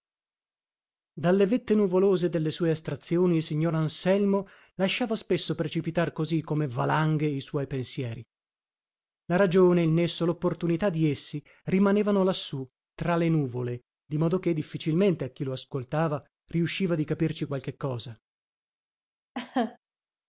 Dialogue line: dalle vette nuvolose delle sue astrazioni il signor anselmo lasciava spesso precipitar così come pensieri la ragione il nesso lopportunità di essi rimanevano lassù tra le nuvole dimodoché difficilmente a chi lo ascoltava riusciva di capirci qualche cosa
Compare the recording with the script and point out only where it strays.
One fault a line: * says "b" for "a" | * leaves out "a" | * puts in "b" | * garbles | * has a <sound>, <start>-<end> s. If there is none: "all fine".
* puts in "valanghe i suoi"
* has a laugh, 19.3-19.8 s